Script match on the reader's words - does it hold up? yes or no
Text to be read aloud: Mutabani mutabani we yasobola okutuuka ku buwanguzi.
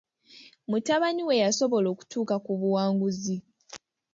no